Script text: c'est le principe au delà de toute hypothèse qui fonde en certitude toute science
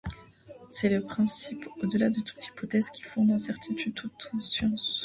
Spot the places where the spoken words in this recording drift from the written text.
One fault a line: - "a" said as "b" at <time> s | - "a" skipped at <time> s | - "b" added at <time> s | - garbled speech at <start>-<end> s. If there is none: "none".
none